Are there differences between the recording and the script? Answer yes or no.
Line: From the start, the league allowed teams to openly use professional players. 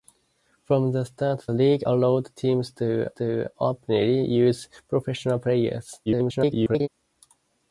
yes